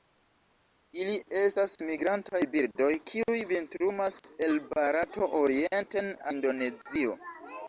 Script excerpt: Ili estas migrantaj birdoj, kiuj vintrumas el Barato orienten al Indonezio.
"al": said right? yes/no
no